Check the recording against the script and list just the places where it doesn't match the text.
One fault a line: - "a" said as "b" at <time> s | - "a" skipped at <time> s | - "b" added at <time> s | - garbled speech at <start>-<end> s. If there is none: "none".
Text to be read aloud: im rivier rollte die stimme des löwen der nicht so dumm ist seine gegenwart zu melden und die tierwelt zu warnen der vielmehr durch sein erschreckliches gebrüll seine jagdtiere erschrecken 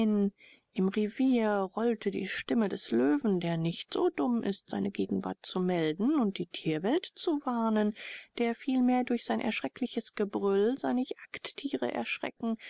none